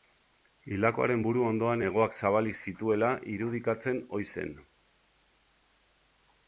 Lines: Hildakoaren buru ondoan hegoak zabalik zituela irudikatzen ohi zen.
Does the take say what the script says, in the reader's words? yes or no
yes